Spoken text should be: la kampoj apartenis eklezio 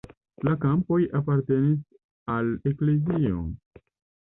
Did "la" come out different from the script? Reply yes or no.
no